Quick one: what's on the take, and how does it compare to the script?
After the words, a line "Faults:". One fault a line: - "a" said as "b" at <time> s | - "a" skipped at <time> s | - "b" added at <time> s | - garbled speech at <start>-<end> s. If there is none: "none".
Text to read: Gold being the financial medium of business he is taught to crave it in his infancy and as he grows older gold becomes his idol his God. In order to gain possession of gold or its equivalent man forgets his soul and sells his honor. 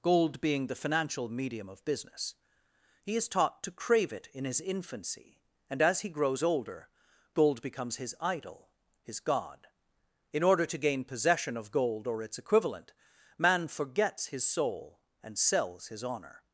Gold being the financial medium of business he is taught to crave it in his infancy and as he grows older gold becomes his idol his God. In order to gain possession of gold or its equivalent man forgets his soul and sells his honor.
Faults:
none